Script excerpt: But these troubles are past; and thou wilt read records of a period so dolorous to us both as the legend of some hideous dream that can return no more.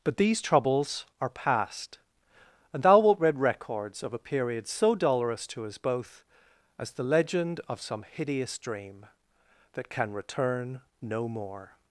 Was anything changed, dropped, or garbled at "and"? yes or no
no